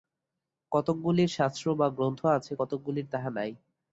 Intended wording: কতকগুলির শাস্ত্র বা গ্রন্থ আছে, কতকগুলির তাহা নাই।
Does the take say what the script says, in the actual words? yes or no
yes